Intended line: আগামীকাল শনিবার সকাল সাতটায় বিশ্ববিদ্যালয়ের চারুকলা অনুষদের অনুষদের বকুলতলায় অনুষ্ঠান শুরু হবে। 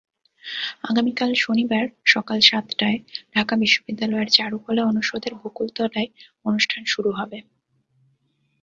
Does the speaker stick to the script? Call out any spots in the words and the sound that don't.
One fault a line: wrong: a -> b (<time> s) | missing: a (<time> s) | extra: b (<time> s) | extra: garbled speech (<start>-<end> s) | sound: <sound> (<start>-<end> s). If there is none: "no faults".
extra: ঢাকা (3.4 s)
missing: অনুষদের (5.3 s)